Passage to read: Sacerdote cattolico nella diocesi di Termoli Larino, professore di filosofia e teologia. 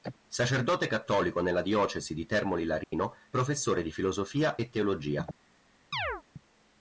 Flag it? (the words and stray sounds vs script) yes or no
yes